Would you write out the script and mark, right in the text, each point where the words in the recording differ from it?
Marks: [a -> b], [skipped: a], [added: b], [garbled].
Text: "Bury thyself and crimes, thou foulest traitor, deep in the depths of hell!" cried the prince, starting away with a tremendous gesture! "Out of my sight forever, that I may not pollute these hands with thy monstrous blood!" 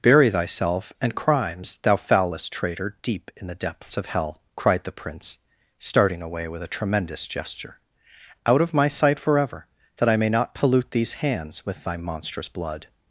"Bury thyself and crimes, thou foulest traitor, deep in the depths of hell!" cried the prince, starting away with a tremendous gesture! "Out of my sight forever, that I may not pollute these hands with thy monstrous blood!"